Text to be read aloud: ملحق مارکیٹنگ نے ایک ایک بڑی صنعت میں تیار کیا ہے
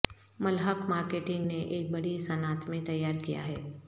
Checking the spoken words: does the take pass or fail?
fail